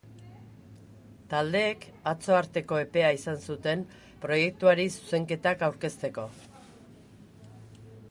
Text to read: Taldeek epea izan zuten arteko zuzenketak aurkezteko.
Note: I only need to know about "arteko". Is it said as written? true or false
false